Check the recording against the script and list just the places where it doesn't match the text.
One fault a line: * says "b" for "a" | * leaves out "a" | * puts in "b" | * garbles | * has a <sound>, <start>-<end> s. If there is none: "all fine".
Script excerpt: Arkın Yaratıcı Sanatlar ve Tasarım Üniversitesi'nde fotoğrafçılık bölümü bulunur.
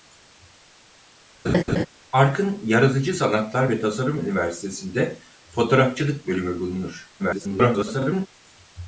* has a laugh, 1.4-1.9 s
* garbles